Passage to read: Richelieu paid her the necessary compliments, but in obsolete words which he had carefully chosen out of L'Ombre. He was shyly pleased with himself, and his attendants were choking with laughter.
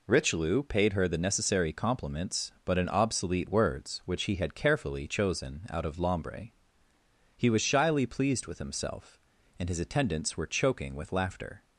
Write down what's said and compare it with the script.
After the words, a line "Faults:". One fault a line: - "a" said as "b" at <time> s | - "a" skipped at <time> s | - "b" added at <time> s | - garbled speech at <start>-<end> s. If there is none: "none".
Richelieu paid her the necessary compliments, but in obsolete words which he had carefully chosen out of L'Ombre. He was shyly pleased with himself, and his attendants were choking with laughter.
Faults:
none